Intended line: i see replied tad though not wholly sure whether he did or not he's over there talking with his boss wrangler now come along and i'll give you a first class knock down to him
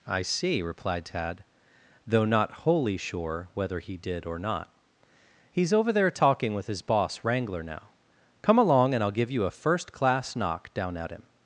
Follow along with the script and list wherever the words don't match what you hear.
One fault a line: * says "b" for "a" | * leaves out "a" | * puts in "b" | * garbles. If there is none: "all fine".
* says "at" for "to"